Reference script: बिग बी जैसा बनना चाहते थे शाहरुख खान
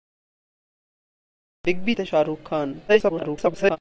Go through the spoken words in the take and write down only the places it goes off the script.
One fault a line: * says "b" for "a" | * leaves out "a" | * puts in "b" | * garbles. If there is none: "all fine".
* leaves out "जैसा बनना चाहते"
* garbles